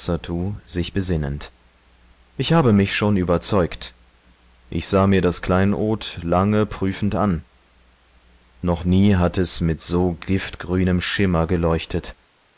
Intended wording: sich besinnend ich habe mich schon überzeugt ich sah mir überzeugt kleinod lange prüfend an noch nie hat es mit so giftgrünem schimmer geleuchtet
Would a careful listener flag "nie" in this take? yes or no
no